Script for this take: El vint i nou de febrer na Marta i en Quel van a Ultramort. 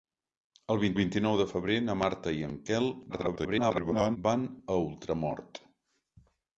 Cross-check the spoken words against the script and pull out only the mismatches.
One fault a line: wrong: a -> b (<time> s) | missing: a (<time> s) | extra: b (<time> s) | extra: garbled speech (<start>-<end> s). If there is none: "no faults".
extra: vint (1.0 s)
extra: garbled speech (3.1-4.2 s)